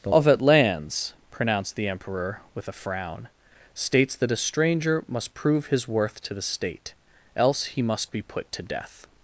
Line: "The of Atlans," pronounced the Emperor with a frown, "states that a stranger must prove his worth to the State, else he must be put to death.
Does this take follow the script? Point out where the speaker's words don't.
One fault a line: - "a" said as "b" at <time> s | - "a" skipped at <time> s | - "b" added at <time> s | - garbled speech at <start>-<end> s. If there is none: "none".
none